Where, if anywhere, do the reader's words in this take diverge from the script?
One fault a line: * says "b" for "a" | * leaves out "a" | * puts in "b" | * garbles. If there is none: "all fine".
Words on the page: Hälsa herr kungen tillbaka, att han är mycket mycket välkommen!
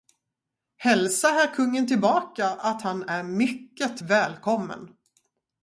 * leaves out "mycket"